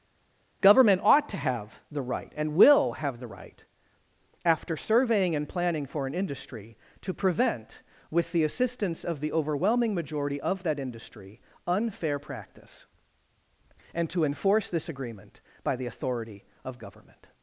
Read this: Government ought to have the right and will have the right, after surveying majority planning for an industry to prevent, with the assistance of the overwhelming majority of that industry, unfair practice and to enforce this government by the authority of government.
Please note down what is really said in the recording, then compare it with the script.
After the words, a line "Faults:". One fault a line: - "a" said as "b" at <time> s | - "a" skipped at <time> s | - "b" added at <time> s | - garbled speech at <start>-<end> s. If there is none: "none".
Government ought to have the right and will have the right, after surveying and planning for an industry to prevent, with the assistance of the overwhelming majority of that industry, unfair practice and to enforce this agreement by the authority of government.
Faults:
- "majority" said as "and" at 5.3 s
- "government" said as "agreement" at 14.9 s